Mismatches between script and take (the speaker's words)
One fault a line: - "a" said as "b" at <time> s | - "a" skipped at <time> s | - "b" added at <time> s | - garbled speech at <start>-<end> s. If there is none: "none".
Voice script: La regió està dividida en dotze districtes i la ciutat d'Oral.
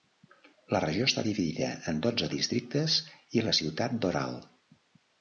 none